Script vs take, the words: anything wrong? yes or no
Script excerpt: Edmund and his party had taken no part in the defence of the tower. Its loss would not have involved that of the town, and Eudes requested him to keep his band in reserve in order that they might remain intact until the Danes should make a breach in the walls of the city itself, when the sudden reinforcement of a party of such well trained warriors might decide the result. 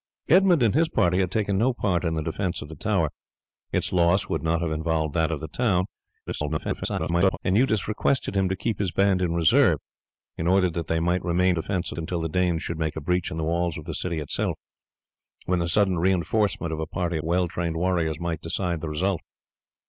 yes